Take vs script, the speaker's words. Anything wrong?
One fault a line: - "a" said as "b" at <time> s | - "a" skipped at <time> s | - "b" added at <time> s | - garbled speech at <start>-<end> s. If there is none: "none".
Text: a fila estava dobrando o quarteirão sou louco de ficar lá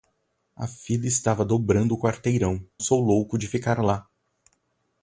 none